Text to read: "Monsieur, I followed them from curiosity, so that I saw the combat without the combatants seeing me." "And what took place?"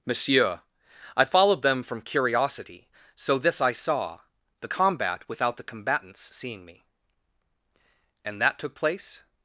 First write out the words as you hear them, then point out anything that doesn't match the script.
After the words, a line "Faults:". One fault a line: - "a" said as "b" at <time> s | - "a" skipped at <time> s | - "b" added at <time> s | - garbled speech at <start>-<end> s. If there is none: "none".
"Monsieur, I followed them from curiosity, so this I saw the combat without the combatants seeing me." "And that took place?"
Faults:
- "that" said as "this" at 3.4 s
- "what" said as "that" at 8.4 s